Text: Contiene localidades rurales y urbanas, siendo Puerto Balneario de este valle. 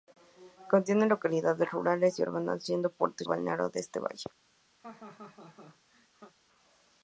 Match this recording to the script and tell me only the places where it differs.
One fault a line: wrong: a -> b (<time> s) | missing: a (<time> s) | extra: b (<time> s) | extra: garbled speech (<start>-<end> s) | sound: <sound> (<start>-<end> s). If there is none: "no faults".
sound: laugh (4.8-6.3 s)